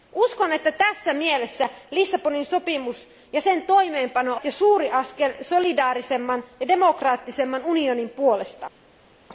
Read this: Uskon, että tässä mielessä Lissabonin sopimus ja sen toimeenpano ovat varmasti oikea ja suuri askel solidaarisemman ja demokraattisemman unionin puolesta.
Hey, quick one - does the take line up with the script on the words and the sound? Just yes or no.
no